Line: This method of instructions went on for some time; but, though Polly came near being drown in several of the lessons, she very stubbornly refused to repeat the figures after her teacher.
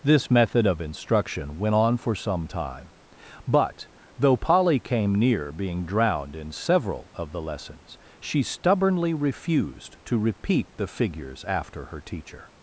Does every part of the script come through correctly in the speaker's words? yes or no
no